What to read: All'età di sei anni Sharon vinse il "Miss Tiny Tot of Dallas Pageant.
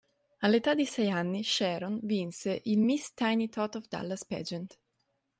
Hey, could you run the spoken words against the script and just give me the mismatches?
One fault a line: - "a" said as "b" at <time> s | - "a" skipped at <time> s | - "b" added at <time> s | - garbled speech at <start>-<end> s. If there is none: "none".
none